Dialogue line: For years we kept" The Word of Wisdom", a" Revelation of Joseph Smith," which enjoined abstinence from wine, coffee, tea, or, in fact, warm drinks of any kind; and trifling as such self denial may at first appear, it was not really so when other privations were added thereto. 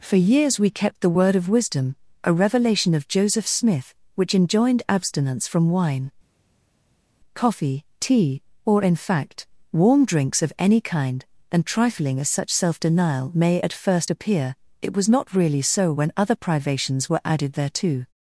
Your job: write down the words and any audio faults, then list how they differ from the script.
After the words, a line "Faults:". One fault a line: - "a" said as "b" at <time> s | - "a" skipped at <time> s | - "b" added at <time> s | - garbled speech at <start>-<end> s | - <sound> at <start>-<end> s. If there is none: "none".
For years we kept" The Word of Wisdom", a" Revelation of Joseph Smith," which enjoined abstinence from wine, coffee, tea, or, in fact, warm drinks of any kind; and trifling as such self denial may at first appear, it was not really so when other privations were added thereto.
Faults:
none